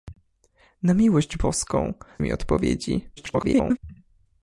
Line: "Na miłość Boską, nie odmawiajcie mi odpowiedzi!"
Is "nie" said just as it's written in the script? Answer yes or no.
no